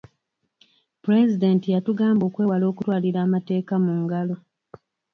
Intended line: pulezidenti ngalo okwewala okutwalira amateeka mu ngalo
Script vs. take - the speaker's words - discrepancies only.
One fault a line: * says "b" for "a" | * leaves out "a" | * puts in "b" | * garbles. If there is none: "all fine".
* says "yatugamba" for "ngalo"